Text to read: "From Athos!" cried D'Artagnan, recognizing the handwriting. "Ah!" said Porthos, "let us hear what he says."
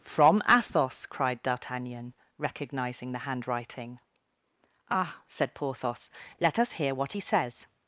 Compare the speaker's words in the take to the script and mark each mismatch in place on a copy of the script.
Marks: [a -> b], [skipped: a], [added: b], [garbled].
"From Athos!" cried D'Artagnan, recognizing the handwriting. "Ah!" said Porthos, "let us hear what he says."